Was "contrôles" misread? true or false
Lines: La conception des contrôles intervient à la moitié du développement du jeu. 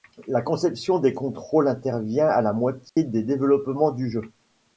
false